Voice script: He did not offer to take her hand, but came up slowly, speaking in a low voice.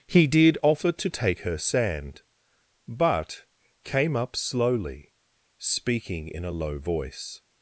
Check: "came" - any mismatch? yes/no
no